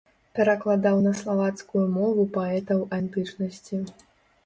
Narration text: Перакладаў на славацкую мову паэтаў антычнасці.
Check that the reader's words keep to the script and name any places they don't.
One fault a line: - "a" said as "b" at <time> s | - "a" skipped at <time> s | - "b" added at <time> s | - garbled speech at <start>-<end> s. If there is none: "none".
none